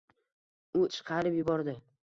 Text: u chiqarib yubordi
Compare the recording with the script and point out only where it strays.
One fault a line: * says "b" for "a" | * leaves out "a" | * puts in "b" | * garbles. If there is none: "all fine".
all fine